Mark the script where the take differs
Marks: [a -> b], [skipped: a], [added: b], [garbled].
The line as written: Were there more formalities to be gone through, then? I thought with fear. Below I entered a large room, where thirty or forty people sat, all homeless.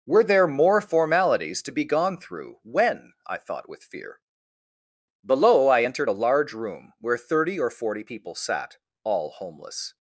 Were there more formalities to be gone through, [then? -> when] I thought with fear. Below I entered a large room, where thirty or forty people sat, all homeless.